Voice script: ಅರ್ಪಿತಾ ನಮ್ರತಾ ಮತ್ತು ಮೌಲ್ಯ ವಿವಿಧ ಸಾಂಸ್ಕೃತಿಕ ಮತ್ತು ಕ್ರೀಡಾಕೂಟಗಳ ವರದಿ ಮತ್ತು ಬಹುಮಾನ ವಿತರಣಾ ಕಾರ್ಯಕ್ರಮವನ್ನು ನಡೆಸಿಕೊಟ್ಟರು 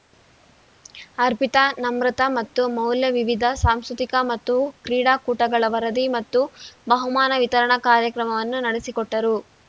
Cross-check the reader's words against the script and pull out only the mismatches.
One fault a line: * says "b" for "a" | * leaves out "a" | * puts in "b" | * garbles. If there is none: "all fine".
all fine